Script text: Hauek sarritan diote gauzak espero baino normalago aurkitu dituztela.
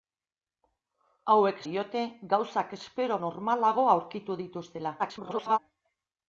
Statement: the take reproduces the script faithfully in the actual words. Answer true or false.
false